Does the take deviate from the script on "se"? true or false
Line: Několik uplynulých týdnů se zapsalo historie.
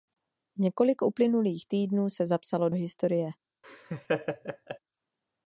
false